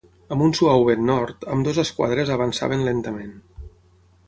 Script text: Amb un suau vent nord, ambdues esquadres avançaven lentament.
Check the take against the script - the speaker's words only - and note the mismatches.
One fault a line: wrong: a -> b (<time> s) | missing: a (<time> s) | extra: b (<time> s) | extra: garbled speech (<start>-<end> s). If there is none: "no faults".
no faults